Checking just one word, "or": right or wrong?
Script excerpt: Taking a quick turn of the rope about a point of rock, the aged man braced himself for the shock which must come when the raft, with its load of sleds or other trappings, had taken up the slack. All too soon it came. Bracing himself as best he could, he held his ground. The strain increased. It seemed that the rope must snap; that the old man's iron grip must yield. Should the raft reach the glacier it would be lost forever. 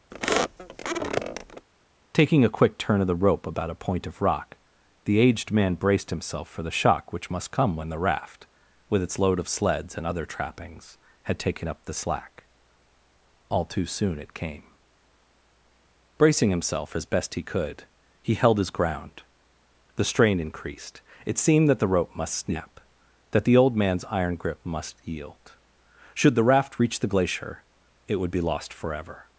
wrong